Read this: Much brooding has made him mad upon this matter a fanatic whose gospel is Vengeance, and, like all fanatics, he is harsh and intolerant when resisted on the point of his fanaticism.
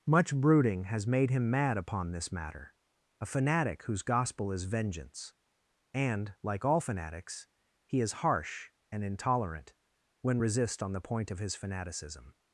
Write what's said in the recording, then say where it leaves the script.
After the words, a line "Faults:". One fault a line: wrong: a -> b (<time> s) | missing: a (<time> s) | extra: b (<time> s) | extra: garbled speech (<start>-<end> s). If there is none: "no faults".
Much brooding has made him mad upon this matter a fanatic whose gospel is Vengeance, and, like all fanatics, he is harsh and intolerant when resist on the point of his fanaticism.
Faults:
wrong: resisted -> resist (10.4 s)